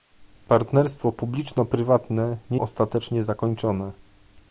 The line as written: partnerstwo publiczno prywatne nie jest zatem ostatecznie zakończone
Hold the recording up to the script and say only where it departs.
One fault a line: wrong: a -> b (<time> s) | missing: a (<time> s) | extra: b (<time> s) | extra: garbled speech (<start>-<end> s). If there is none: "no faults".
missing: jest zatem (2.6 s)